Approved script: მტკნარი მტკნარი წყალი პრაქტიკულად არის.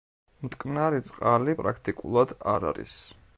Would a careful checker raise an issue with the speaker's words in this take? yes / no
yes